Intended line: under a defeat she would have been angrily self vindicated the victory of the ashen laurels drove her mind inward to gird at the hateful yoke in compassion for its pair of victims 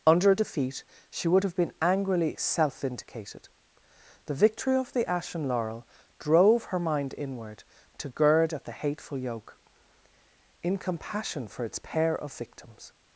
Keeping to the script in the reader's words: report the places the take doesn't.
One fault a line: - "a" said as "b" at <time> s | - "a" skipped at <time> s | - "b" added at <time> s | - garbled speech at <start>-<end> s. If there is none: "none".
- "laurels" said as "laurel" at 5.5 s